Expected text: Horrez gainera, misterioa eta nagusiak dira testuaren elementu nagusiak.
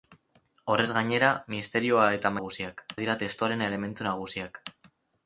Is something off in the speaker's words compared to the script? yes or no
no